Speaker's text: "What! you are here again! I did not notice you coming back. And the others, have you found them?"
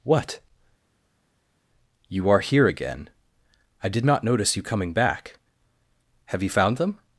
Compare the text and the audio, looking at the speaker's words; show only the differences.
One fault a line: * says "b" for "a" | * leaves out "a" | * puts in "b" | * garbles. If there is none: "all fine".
* leaves out "And the others"